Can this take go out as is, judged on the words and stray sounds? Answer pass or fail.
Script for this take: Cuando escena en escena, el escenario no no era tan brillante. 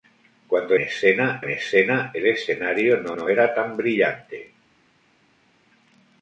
pass